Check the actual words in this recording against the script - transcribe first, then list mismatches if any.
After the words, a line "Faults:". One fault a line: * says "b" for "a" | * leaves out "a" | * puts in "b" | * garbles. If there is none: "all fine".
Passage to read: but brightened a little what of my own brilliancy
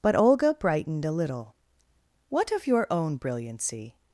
but olga brightened a little what of your own brilliancy
Faults:
* puts in "olga"
* says "your" for "my"